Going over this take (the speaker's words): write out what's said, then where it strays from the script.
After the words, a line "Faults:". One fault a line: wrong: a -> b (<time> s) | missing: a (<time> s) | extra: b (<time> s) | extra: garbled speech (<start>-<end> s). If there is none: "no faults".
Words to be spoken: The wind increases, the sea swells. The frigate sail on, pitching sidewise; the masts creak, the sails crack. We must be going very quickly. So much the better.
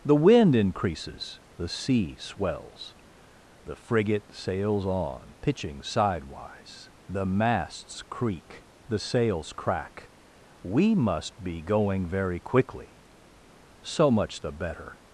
The wind increases, the sea swells. The frigate sails on, pitching sidewise; the masts creak, the sails crack. We must be going very quickly. So much the better.
Faults:
wrong: sail -> sails (4.3 s)